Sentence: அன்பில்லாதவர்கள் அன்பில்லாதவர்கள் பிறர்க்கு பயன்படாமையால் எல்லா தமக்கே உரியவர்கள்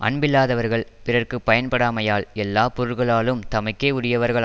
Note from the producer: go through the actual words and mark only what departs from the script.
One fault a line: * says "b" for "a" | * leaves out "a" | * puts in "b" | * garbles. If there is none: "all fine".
* leaves out "அன்பில்லாதவர்கள்"
* puts in "பொருள்களாலும்"